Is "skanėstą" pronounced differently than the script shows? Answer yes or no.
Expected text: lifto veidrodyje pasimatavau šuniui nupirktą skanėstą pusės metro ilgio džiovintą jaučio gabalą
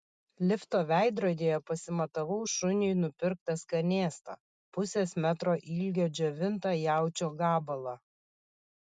no